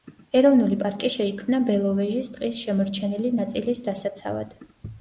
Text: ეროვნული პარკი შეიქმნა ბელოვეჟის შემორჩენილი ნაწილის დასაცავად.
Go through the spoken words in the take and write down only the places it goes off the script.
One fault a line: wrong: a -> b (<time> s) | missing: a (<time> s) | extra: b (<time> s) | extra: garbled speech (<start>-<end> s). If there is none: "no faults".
extra: ტყის (2.4 s)